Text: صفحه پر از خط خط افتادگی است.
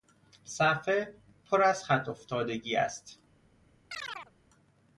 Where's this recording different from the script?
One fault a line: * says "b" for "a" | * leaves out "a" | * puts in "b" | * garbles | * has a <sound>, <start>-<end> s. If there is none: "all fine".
* leaves out "خط"
* has a chirp, 3.9-4.3 s